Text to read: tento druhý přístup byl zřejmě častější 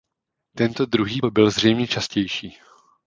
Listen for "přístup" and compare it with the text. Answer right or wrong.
wrong